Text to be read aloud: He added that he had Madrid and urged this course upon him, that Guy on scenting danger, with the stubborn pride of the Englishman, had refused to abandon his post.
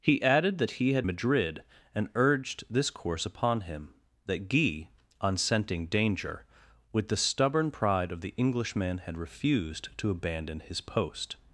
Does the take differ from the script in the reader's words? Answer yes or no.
no